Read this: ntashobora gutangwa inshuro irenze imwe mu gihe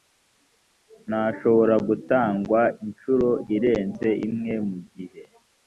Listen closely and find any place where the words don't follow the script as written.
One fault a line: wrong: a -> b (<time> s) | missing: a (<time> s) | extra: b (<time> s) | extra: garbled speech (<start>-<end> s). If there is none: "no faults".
no faults